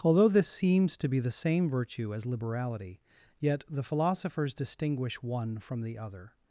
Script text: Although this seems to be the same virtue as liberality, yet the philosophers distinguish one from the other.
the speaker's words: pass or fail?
pass